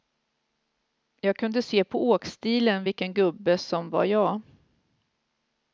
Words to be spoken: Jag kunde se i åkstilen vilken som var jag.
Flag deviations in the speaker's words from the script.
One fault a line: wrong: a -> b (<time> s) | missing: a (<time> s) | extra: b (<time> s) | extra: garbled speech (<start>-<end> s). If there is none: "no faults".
wrong: i -> på (1.8 s)
extra: gubbe (3.1 s)